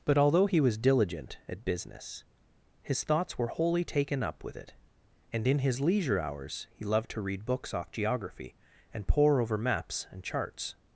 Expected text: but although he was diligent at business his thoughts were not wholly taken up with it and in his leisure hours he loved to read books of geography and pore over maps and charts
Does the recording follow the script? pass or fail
fail